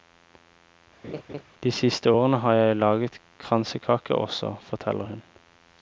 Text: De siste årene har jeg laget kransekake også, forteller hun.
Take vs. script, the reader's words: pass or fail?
pass